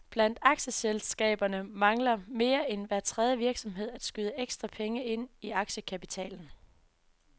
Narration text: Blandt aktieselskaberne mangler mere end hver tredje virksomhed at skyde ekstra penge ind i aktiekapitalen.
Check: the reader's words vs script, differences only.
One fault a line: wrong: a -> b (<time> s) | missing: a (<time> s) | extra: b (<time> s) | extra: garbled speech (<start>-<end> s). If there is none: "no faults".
no faults